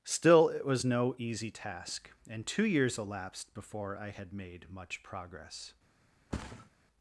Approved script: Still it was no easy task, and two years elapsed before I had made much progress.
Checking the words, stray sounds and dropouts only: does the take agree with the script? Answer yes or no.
no